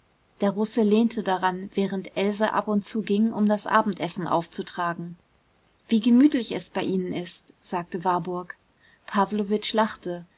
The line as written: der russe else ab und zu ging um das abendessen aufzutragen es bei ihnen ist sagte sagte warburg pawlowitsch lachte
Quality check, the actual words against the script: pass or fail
fail